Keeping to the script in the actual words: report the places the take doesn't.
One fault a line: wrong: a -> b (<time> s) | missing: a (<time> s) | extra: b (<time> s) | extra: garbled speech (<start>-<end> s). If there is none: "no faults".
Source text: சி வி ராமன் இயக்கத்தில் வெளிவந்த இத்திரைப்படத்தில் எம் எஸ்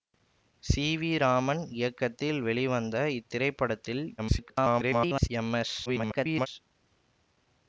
extra: garbled speech (4.2-5.3 s)
extra: garbled speech (5.9-6.5 s)